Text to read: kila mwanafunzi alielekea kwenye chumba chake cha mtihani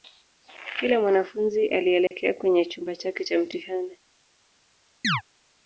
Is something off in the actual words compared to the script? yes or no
no